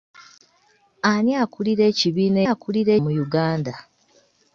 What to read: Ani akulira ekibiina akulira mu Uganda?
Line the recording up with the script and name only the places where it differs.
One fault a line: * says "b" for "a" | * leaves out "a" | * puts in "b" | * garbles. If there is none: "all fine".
all fine